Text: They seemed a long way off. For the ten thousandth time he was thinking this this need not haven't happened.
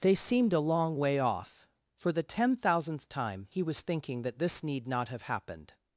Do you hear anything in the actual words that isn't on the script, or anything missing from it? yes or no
yes